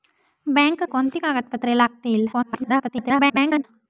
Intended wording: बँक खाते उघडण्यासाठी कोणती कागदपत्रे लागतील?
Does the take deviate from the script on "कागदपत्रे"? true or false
false